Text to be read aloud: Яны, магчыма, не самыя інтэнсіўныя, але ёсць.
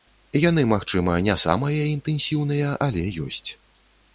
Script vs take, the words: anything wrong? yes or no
no